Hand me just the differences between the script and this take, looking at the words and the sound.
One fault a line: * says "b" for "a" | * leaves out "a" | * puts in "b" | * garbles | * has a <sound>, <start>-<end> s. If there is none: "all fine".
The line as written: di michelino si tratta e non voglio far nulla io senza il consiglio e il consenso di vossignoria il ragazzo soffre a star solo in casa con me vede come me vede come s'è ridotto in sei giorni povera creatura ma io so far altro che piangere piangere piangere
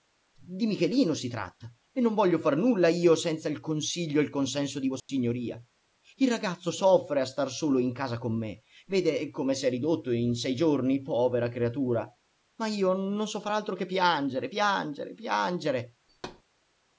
* has a dropout, 5.0-5.1 s
* leaves out "me vede come"
* puts in "non"
* has a thud, 16.1-16.4 s